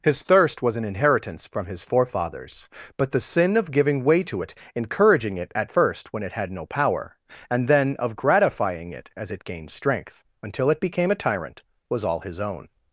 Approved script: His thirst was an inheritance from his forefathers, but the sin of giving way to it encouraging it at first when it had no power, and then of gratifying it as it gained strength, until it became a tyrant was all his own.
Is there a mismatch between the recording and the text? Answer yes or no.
no